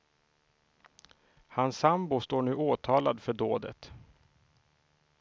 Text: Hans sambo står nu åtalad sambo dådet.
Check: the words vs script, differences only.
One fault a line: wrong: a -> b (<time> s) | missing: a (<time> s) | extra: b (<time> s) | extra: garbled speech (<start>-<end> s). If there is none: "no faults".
wrong: sambo -> för (3.2 s)